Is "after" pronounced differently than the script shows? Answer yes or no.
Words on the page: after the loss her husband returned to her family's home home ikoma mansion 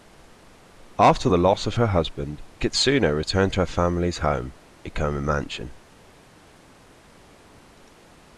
no